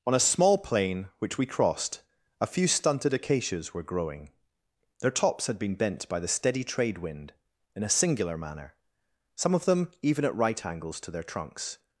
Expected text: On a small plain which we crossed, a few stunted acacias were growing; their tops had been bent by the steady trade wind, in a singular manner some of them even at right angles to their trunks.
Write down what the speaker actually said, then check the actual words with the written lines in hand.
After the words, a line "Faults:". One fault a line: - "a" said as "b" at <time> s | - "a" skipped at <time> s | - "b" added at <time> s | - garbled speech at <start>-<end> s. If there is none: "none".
On a small plain which we crossed, a few stunted acacias were growing; their tops had been bent by the steady trade wind, in a singular manner some of them even at right angles to their trunks.
Faults:
none